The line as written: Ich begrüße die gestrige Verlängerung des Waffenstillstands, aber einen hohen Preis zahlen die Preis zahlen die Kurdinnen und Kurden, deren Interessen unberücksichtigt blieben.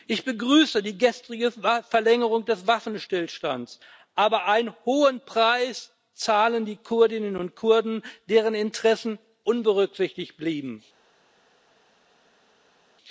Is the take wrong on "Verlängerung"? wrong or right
right